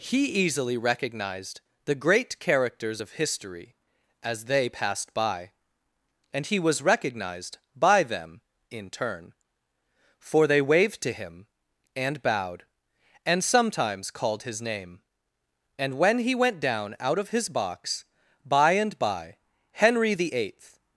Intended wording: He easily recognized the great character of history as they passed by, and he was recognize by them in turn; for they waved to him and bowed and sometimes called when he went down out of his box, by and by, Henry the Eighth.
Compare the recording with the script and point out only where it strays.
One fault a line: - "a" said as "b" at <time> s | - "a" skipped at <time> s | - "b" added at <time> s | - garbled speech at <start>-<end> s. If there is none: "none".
- "character" said as "characters" at 2.4 s
- "recognize" said as "recognized" at 6.8 s
- "his name and" added at 14.4 s